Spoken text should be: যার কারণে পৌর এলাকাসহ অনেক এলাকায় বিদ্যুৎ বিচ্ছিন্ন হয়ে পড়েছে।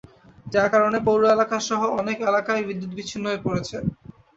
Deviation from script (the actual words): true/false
false